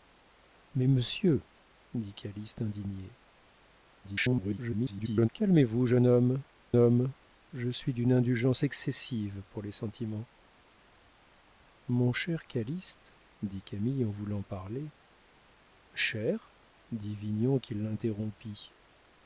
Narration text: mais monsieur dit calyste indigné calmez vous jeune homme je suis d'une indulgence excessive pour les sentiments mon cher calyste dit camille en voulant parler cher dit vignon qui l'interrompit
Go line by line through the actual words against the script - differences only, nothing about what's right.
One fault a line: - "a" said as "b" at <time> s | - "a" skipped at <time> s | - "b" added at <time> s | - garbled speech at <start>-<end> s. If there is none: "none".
- garbled speech at 4.0-5.3 s
- "homme" added at 6.8 s